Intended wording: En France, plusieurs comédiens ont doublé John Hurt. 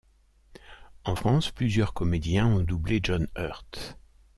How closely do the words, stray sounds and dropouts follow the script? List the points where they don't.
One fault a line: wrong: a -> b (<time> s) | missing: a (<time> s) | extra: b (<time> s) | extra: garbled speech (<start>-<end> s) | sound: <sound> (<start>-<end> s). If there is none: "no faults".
no faults